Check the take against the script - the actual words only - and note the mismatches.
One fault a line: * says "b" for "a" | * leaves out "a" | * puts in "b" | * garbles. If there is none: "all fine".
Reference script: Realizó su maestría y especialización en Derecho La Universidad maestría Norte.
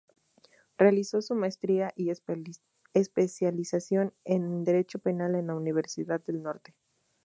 * puts in "Penal en"
* says "del" for "maestría"